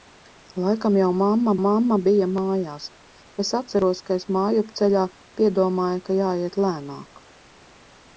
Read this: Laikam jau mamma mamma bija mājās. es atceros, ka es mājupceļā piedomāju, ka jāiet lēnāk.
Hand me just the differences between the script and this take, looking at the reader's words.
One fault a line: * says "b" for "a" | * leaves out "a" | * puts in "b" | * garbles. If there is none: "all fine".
all fine